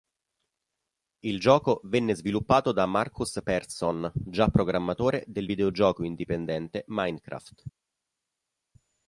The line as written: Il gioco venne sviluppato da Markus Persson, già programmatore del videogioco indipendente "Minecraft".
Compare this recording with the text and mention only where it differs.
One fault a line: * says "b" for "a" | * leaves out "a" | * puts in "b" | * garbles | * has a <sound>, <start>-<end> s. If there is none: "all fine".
all fine